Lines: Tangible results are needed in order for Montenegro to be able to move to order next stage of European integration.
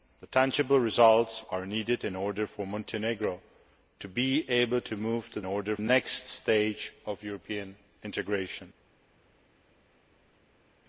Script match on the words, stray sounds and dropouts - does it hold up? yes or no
yes